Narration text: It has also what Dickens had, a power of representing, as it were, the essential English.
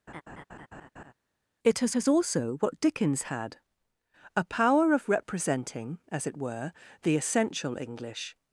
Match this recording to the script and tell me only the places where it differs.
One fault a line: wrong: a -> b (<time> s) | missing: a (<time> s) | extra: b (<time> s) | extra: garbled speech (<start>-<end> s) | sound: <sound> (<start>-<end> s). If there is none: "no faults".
sound: laugh (0.1-1.1 s)
extra: has (1.9 s)